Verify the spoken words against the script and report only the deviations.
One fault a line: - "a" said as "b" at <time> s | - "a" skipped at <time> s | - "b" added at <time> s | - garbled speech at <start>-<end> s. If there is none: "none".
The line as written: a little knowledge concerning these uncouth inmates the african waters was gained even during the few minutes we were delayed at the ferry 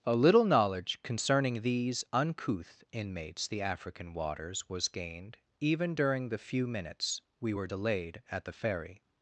none